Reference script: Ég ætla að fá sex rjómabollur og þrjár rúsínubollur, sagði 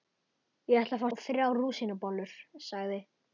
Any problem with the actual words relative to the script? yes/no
yes